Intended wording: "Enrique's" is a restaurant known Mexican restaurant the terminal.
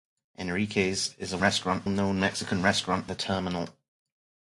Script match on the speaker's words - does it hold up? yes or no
yes